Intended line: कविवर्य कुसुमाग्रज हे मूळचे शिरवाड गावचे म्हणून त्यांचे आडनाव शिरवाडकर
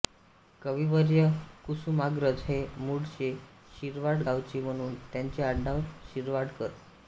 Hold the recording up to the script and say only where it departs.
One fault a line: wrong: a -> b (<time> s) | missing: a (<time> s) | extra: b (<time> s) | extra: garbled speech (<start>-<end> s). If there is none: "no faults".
no faults